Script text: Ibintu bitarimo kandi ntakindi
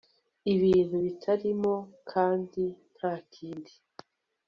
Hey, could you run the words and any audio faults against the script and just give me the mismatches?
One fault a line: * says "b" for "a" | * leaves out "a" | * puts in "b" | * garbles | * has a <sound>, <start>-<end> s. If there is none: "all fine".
all fine